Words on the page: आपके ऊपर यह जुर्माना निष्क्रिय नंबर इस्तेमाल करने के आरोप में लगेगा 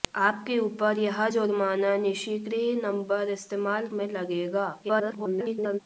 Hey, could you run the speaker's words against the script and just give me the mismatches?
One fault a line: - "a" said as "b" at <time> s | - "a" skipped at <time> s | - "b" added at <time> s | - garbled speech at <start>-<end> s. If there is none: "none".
- "करने के आरोप" skipped at 3.9 s
- garbled speech at 4.8-5.8 s